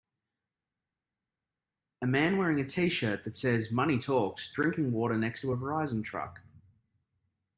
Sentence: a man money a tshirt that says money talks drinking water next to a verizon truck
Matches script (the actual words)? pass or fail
fail